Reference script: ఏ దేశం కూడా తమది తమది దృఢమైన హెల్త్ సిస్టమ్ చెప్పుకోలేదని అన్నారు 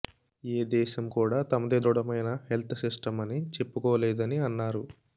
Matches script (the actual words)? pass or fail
fail